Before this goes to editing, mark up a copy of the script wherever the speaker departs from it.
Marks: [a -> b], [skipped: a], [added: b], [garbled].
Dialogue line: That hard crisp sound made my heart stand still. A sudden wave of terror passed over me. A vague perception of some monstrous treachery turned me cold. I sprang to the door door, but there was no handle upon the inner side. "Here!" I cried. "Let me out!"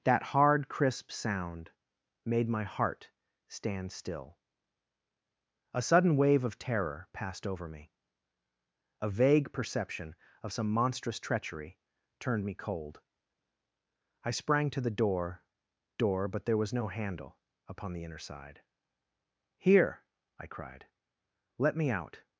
That hard crisp sound made my heart stand still. A sudden wave of terror passed over me. A vague perception of some monstrous treachery turned me cold. I sprang to the door door, but there was no handle upon the inner side. "Here!" I cried. "Let me out!"